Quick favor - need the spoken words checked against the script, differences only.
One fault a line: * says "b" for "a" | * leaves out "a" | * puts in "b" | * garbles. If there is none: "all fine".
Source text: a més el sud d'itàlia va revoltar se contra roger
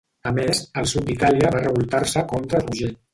all fine